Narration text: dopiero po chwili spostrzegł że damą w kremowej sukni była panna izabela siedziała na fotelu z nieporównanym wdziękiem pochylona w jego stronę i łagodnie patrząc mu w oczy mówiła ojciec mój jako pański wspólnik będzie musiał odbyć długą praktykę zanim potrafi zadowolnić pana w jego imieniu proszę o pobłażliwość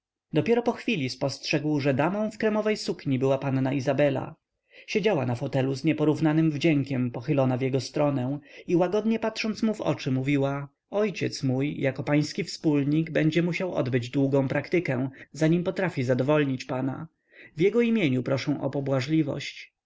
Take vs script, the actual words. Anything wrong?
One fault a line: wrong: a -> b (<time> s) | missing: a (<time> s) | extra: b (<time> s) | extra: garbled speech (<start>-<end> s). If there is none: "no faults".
no faults